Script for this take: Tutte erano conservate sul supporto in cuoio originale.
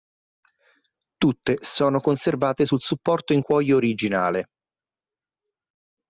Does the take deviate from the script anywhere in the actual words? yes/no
yes